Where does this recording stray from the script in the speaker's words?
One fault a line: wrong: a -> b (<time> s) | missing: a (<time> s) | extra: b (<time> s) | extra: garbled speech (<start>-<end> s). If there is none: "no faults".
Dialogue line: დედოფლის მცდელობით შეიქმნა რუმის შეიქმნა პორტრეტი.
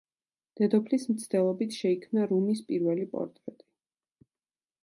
wrong: შეიქმნა -> პირველი (2.7 s)